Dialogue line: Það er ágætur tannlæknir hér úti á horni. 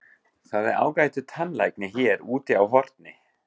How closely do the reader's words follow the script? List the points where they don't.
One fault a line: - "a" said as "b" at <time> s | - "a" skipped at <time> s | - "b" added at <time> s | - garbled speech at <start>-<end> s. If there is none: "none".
none